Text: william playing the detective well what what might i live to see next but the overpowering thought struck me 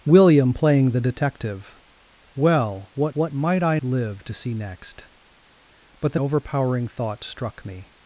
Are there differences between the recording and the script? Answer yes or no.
no